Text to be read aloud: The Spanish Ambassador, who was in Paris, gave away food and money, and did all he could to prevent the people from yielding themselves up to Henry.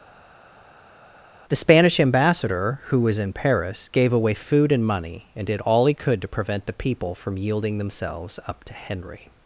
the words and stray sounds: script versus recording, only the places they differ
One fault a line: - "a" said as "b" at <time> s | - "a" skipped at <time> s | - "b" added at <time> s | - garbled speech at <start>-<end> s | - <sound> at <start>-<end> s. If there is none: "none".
none